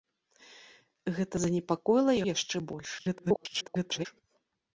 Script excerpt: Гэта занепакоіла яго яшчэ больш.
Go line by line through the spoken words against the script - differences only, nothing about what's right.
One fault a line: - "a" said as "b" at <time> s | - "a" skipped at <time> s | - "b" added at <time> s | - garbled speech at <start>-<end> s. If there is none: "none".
- "яго" skipped at 2.1 s
- garbled speech at 3.0-4.1 s